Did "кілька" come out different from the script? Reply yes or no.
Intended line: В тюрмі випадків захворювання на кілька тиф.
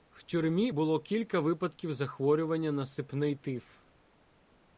yes